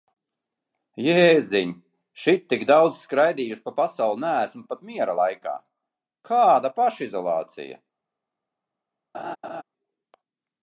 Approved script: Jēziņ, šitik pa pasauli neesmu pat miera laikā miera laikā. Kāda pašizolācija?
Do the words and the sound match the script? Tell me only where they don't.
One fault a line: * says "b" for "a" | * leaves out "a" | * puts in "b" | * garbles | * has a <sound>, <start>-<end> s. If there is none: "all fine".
* puts in "daudz skraidījusi"
* leaves out "miera laikā"
* has a laugh, 9.1-9.6 s